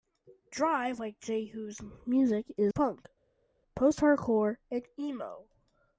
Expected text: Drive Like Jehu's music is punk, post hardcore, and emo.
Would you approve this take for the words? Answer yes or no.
yes